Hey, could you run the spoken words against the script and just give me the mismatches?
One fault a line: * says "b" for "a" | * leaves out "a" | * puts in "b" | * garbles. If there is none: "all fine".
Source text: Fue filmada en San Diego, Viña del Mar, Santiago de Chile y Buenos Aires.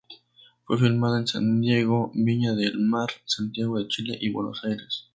all fine